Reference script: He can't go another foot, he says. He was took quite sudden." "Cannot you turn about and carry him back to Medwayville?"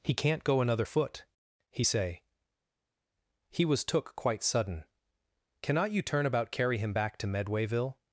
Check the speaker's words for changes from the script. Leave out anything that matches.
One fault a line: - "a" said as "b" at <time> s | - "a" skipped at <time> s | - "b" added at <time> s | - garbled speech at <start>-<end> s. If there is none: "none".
- "says" said as "say" at 1.8 s
- "and" skipped at 6.5 s